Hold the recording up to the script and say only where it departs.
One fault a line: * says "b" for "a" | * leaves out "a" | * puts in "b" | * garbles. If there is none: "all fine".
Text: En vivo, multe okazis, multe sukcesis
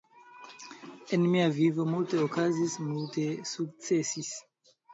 * puts in "mia"